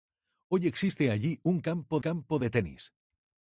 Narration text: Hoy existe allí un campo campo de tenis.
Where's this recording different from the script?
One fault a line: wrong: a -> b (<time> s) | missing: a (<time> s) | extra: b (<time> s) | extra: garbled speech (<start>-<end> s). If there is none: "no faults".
no faults